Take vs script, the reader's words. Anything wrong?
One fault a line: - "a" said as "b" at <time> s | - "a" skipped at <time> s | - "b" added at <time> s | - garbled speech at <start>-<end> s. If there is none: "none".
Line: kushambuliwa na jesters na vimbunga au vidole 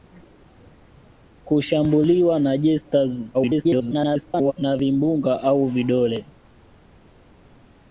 - garbled speech at 3.3-4.5 s